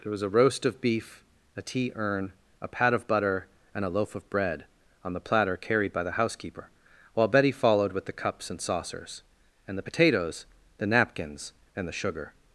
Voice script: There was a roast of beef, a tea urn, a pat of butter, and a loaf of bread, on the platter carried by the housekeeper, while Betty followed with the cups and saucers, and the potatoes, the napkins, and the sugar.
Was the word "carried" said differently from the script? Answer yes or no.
no